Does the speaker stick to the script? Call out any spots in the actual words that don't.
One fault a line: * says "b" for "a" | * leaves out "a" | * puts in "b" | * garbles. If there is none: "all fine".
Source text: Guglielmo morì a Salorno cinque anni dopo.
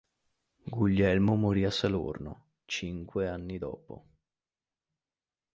all fine